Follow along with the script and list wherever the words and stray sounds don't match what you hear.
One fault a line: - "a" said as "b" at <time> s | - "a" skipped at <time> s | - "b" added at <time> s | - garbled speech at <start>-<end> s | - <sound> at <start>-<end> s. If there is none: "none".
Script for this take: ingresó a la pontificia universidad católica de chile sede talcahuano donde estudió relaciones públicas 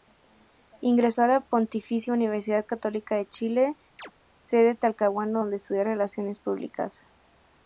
- chirp at 4.0-4.1 s